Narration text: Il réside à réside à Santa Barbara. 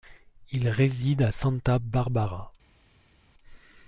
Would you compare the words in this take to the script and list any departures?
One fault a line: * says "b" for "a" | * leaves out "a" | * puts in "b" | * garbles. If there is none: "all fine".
* leaves out "réside à"